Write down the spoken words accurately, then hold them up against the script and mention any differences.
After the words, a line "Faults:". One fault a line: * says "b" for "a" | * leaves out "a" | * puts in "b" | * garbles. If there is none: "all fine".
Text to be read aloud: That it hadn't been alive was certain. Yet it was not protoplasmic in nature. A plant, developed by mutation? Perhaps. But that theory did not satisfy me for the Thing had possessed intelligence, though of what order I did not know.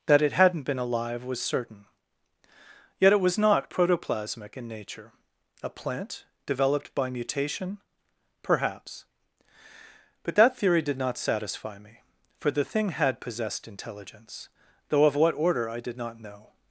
That it hadn't been alive was certain. Yet it was not protoplasmic in nature. A plant, developed by mutation? Perhaps. But that theory did not satisfy me for the Thing had possessed intelligence, though of what order I did not know.
Faults:
all fine